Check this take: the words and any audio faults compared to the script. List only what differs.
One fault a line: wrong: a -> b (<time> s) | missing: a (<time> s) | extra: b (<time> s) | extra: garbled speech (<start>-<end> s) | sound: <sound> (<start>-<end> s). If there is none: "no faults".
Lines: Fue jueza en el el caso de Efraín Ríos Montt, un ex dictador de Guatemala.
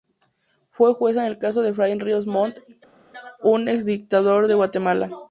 missing: el (1.4 s)